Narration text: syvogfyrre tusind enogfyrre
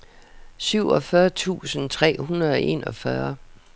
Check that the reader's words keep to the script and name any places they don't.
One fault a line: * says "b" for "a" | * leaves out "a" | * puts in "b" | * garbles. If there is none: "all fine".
* puts in "tre hundrede og"